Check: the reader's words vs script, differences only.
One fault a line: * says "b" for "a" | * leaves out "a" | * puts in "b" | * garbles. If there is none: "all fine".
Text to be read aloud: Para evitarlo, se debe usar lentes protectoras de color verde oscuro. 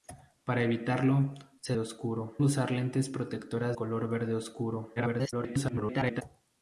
* says "oscuro" for "debe"
* leaves out "de"
* garbles